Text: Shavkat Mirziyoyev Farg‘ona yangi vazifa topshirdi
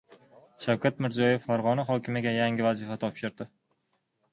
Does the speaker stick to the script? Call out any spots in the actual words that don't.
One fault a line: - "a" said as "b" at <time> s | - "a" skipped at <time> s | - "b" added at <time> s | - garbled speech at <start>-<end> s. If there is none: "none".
- "hokimiga" added at 1.9 s